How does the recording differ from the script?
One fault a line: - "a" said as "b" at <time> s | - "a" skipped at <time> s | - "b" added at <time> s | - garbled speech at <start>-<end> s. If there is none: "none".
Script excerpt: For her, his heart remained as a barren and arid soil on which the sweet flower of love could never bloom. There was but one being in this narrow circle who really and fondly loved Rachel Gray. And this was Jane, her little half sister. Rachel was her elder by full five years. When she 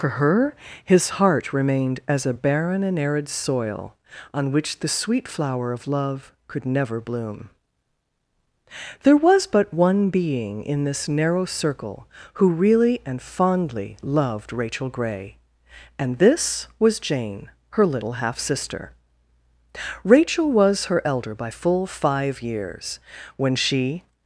none